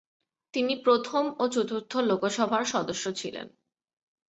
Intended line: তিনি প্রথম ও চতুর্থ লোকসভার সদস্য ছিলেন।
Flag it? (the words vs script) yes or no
no